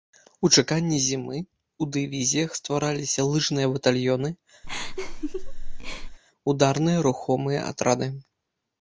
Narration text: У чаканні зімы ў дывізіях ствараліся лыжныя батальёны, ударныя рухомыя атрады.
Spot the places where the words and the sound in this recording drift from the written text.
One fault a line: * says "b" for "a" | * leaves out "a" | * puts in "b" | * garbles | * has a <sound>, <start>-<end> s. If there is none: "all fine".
* has a laugh, 4.6-6.2 s